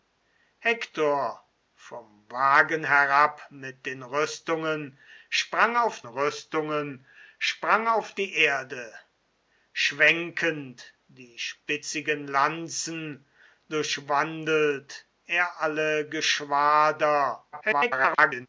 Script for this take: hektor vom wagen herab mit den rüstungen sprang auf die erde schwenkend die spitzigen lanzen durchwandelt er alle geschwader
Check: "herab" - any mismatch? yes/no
no